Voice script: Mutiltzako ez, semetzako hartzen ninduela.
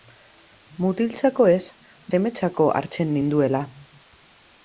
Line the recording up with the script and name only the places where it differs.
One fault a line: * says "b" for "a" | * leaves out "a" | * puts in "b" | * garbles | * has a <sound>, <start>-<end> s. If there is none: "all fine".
all fine